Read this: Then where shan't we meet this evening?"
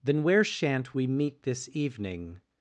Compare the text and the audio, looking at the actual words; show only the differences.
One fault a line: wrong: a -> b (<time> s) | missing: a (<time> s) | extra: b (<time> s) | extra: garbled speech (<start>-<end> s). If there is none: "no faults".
no faults